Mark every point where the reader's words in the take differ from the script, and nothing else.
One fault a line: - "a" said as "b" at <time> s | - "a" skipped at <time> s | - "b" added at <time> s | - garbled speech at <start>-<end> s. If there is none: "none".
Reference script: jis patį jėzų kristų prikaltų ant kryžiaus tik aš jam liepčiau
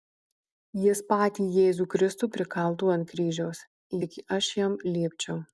none